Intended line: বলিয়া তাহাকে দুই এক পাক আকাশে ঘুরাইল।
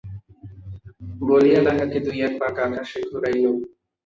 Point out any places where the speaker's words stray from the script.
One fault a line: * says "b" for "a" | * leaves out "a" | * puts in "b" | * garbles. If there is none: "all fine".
all fine